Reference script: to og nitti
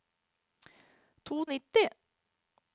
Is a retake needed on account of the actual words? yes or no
no